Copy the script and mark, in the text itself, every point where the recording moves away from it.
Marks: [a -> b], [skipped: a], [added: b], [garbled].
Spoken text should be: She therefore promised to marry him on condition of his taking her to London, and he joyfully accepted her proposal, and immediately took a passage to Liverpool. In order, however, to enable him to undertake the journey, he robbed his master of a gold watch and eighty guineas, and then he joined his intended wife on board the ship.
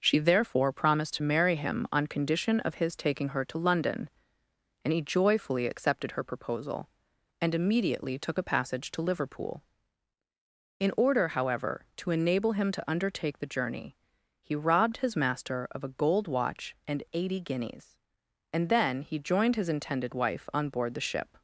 She therefore promised to marry him on condition of his taking her to London, and he joyfully accepted her proposal, and immediately took a passage to Liverpool. In order, however, to enable him to undertake the journey, he robbed his master of a gold watch and eighty guineas, and then he joined his intended wife on board the ship.